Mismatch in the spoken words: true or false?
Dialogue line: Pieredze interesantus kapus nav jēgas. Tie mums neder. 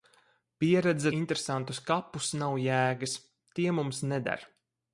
false